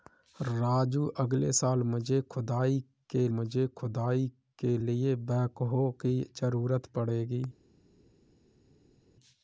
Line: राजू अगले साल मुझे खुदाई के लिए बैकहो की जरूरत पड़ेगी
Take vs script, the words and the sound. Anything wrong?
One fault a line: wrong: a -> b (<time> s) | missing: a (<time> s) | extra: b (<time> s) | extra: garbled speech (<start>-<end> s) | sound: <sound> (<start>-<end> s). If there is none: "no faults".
extra: मुझे खुदाई के (3.3 s)